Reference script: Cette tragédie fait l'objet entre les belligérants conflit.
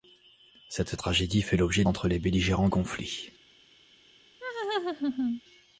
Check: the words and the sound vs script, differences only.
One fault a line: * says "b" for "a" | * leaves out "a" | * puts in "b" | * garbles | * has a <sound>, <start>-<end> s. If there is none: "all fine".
* has a laugh, 4.4-5.4 s